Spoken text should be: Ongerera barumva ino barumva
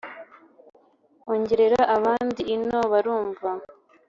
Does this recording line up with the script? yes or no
no